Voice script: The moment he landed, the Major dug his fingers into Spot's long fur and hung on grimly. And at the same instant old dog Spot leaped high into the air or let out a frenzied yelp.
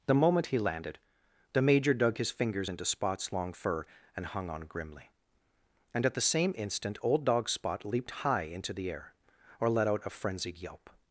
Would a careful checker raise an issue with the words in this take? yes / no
no